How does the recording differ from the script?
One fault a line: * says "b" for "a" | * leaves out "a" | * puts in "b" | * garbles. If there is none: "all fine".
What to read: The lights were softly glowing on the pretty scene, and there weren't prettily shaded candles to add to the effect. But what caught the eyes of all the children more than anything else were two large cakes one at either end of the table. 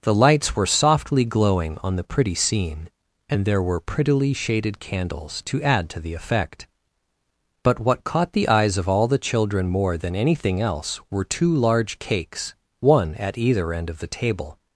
* says "were" for "weren't"